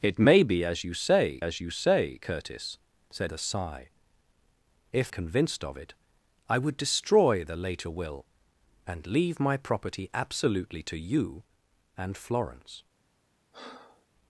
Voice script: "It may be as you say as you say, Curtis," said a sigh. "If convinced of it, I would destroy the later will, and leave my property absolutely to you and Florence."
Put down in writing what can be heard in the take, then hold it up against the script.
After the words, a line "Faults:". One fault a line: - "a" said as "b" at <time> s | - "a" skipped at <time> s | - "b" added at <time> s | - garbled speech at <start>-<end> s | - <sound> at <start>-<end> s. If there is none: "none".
"It may be as you say as you say, Curtis," said a sigh. "If convinced of it, I would destroy the later will, and leave my property absolutely to you and Florence."
Faults:
- breath at 13.5-14.1 s